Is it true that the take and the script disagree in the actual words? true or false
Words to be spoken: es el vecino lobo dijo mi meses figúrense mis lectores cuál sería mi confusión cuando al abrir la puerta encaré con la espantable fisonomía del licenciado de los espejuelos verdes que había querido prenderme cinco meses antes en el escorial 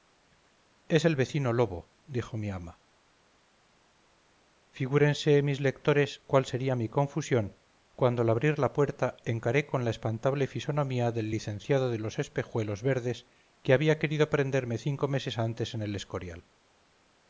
true